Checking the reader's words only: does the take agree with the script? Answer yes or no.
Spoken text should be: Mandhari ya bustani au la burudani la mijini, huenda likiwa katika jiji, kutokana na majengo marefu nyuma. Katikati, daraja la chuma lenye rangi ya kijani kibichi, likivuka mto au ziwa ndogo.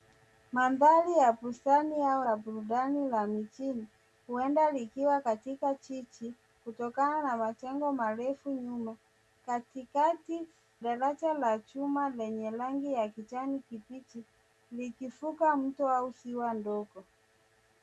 yes